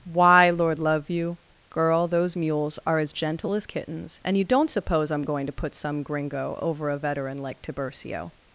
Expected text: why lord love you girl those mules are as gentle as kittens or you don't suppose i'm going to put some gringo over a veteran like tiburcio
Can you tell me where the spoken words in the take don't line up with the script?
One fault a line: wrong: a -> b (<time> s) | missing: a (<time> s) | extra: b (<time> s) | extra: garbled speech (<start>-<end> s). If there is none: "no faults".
wrong: or -> and (4.2 s)